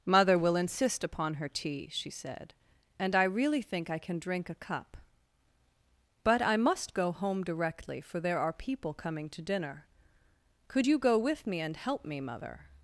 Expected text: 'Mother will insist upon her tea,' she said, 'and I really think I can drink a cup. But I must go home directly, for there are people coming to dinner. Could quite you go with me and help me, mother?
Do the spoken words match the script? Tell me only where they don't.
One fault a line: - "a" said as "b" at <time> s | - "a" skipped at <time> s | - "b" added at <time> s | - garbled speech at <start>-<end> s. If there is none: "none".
- "quite" skipped at 10.9 s